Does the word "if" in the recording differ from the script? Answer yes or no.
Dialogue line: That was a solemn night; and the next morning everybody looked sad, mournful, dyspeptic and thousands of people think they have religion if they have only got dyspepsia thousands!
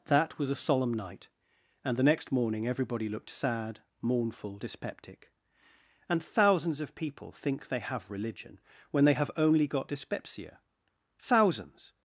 yes